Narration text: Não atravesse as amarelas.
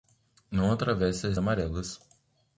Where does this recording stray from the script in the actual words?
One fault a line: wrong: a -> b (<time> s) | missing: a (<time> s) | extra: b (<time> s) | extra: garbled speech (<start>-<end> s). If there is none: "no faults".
no faults